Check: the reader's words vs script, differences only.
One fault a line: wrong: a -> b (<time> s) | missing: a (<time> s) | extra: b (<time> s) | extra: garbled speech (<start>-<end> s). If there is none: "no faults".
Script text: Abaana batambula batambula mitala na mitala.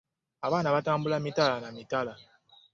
missing: batambula (1.2 s)